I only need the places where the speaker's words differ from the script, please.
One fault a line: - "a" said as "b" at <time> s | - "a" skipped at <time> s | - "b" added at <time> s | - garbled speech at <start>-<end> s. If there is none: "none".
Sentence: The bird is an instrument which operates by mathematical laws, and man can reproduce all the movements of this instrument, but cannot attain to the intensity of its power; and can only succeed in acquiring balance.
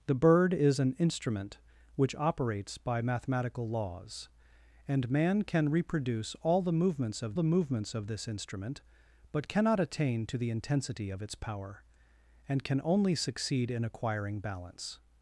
- "the movements of" added at 7.3 s